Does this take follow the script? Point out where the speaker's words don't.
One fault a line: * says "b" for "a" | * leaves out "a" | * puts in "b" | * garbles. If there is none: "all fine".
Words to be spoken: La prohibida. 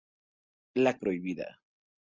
all fine